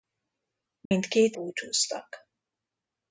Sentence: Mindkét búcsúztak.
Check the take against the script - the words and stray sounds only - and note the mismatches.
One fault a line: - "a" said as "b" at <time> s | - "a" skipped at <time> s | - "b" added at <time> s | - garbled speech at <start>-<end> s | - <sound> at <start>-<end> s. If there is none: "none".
- dropout at 0.9-0.9 s